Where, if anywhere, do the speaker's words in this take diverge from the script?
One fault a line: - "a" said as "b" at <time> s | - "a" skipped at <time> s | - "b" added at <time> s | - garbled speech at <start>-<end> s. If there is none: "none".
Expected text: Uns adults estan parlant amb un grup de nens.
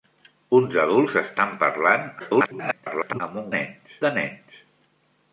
- garbled speech at 2.2-3.2 s
- "grup" said as "nens" at 3.5 s